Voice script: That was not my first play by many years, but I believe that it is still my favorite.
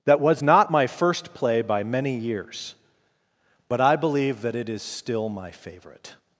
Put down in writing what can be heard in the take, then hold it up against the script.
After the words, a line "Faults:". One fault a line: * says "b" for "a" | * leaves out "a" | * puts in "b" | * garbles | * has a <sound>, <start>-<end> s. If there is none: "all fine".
That was not my first play by many years, but I believe that it is still my favorite.
Faults:
all fine